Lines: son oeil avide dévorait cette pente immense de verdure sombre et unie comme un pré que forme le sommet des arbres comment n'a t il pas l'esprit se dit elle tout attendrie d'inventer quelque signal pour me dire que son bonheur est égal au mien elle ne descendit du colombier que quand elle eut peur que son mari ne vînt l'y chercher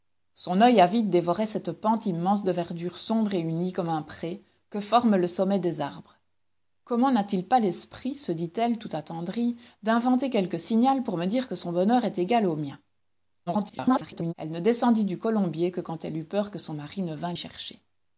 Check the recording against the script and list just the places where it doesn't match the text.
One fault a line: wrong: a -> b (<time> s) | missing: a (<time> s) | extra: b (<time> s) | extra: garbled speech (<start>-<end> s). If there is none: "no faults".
extra: garbled speech (13.5-14.3 s)
missing: l'y (17.3 s)